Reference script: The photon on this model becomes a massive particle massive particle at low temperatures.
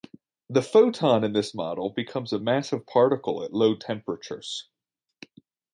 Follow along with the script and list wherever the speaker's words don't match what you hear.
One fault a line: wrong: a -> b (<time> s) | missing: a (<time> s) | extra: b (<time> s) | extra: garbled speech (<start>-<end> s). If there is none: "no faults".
wrong: on -> in (1.2 s)
missing: massive particle (3.4 s)